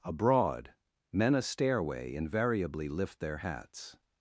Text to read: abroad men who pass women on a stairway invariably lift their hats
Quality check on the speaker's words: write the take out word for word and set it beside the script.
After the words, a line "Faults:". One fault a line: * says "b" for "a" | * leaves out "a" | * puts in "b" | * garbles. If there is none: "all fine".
abroad men a stairway invariably lift their hats
Faults:
* leaves out "who pass women on"